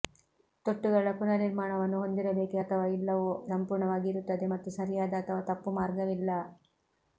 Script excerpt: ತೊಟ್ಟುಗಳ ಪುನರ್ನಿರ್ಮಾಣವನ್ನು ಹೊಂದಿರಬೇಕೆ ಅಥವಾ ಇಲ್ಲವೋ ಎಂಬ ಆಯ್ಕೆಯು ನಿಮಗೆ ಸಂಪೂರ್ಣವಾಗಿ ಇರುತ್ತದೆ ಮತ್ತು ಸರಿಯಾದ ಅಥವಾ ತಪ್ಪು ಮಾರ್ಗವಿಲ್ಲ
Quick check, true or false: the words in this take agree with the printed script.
false